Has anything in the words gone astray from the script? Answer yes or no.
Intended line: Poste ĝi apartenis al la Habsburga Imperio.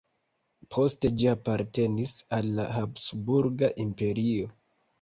no